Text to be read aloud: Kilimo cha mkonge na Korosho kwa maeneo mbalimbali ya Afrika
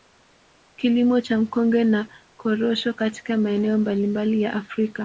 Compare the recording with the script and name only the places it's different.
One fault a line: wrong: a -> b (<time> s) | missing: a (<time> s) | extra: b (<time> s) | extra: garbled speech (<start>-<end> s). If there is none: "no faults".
wrong: kwa -> katika (2.9 s)